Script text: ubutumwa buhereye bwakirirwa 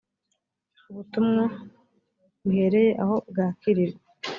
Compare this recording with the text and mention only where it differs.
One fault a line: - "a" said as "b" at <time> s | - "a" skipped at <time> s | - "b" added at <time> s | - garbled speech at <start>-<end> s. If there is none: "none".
- "aho" added at 3.0 s